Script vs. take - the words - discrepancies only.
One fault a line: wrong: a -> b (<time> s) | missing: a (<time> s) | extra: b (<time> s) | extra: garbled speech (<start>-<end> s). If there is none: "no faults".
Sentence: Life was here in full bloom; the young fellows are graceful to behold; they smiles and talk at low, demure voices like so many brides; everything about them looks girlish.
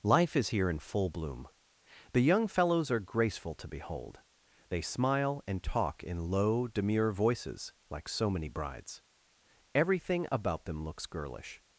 wrong: was -> is (0.3 s)
wrong: smiles -> smile (4.8 s)
wrong: at -> in (6.0 s)